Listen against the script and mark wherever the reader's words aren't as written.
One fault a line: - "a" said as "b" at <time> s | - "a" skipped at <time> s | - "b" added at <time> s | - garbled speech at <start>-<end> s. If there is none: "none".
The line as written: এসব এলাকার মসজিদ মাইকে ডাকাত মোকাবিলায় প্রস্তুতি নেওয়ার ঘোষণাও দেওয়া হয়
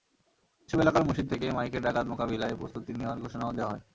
- "থেকে" added at 1.3 s